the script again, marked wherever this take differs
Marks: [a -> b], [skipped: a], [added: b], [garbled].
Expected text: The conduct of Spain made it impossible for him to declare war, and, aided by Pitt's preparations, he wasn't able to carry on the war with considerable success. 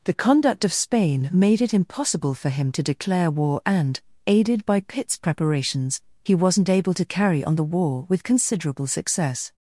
The conduct of Spain made it impossible for him to declare war, and, aided by Pitt's preparations, he wasn't able to carry on the war with considerable success.